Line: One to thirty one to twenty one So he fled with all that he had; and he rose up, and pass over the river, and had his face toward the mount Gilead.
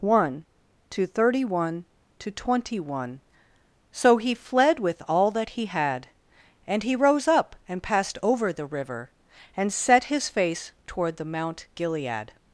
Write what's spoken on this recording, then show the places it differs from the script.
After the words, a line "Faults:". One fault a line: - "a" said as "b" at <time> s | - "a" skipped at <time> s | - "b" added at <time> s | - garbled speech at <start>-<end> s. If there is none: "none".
One to thirty one to twenty one So he fled with all that he had; and he rose up, and passed over the river, and set his face toward the mount Gilead.
Faults:
- "pass" said as "passed" at 7.8 s
- "had" said as "set" at 9.7 s